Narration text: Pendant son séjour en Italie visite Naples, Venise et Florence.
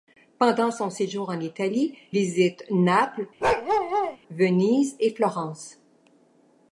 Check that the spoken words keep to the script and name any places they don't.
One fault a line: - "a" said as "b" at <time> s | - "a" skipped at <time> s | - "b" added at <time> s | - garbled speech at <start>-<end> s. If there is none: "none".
none